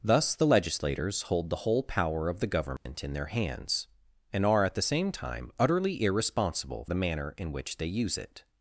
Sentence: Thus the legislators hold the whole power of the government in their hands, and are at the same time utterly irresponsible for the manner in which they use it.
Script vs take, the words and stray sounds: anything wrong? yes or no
yes